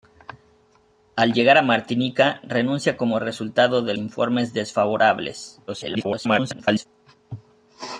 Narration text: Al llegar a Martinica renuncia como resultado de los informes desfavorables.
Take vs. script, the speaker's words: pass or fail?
fail